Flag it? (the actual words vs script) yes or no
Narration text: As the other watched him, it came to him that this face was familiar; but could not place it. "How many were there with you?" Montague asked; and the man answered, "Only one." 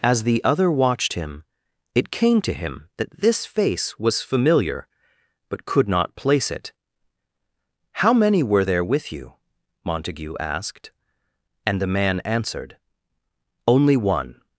no